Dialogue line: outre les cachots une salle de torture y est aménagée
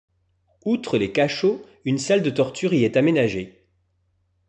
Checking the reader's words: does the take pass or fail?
pass